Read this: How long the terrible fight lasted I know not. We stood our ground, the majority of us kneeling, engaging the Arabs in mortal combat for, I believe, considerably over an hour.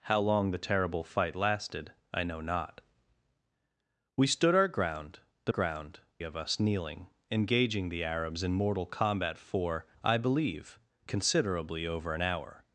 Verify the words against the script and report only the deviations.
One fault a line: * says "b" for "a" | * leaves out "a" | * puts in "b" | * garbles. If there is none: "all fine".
* says "ground" for "majority"